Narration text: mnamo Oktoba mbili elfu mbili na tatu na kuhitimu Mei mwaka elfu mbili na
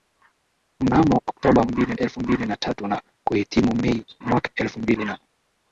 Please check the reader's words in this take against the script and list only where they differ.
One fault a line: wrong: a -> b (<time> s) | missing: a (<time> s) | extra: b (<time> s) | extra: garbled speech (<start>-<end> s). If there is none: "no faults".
no faults